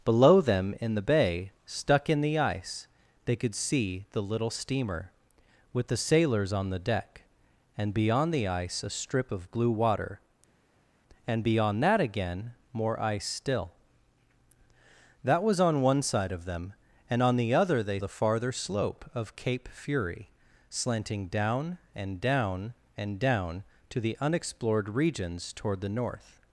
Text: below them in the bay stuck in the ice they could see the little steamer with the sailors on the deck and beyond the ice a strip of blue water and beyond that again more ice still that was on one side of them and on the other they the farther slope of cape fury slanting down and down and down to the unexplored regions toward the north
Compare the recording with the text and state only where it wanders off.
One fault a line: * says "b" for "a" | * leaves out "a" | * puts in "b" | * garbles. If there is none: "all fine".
all fine